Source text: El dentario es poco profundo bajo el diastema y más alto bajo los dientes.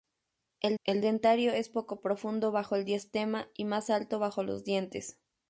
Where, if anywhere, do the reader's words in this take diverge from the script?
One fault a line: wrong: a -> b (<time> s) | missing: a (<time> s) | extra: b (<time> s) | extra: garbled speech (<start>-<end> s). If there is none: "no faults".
extra: el (0.8 s)